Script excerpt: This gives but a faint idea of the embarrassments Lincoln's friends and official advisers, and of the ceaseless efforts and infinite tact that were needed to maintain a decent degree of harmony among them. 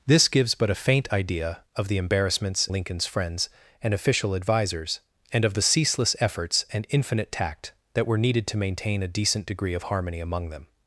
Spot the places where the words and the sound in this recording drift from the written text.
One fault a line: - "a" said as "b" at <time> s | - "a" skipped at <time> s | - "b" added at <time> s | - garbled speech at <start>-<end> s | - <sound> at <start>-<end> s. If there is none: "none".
none